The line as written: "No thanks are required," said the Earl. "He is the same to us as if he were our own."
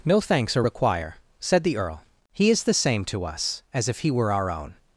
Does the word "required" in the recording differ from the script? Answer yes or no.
yes